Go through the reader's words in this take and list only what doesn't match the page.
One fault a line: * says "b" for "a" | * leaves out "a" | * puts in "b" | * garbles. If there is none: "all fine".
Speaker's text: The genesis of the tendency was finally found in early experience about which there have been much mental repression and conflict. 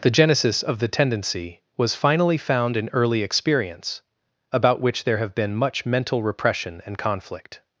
all fine